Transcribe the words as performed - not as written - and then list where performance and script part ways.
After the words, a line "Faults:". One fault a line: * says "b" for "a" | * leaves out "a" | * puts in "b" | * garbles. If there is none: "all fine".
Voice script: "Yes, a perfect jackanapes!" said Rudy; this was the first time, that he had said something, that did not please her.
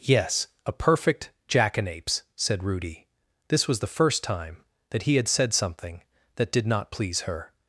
"Yes, a perfect jackanapes!" said Rudy; this was the first time, that he had said something, that did not please her.
Faults:
all fine